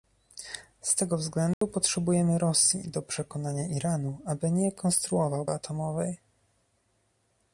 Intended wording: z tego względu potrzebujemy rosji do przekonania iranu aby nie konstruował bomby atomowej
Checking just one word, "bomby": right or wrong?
wrong